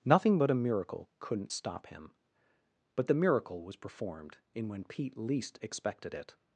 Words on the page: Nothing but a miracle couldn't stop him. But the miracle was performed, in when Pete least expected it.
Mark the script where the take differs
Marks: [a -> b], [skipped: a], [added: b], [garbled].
Nothing but a miracle couldn't stop him. But the miracle was performed, in when Pete least expected it.